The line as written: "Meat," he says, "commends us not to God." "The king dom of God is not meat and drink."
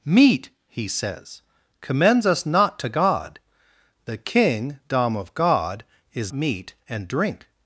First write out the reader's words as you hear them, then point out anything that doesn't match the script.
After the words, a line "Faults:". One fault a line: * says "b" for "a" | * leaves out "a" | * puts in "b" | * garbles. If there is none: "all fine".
"Meat," he says, "commends us not to God." "The king dom of God is meat and drink."
Faults:
* leaves out "not"